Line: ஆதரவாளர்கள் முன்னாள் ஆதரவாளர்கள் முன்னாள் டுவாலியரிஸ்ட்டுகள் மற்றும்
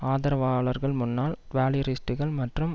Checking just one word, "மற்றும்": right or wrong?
right